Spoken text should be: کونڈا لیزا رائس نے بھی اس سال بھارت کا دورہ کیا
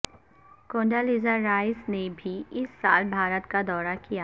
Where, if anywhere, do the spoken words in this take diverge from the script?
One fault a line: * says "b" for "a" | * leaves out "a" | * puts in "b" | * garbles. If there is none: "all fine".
all fine